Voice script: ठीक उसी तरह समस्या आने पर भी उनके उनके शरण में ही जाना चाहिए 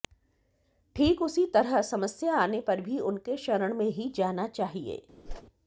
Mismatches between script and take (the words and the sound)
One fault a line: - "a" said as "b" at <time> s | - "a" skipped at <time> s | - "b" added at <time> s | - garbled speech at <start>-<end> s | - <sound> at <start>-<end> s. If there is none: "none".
- "उनके" skipped at 3.4 s
- whoosh at 5.3-5.4 s